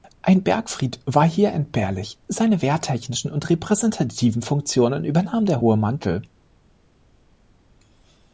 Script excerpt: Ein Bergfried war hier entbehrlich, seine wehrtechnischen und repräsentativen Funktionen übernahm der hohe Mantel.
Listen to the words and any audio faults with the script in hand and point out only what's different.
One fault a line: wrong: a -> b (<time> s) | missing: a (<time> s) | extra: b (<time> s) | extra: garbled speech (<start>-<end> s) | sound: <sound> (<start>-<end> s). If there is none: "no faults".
no faults